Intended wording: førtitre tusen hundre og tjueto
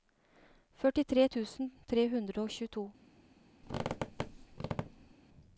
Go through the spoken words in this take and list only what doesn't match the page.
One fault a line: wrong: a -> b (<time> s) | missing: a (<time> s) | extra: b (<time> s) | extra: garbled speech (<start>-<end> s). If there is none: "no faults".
extra: tre (1.9 s)